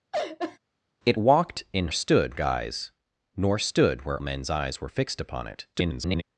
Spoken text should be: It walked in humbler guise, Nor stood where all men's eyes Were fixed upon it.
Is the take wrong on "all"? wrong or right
wrong